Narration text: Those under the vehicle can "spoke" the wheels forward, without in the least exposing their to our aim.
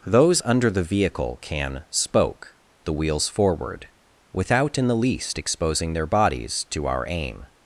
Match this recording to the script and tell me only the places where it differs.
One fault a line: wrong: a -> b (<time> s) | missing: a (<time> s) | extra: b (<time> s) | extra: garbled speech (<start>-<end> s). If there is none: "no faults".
extra: bodies (6.1 s)